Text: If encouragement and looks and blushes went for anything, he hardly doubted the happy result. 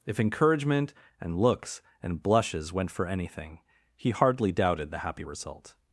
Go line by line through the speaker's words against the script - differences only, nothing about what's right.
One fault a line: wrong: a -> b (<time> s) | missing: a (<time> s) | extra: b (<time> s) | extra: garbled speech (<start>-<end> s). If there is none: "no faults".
no faults